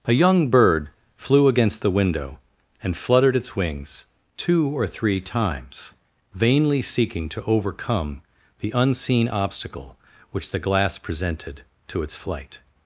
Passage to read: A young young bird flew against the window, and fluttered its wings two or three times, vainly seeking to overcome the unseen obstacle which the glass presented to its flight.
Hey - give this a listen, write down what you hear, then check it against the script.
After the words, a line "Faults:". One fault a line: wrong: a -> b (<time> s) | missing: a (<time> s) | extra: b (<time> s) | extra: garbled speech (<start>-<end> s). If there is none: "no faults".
A young bird flew against the window, and fluttered its wings two or three times, vainly seeking to overcome the unseen obstacle which the glass presented to its flight.
Faults:
missing: young (0.5 s)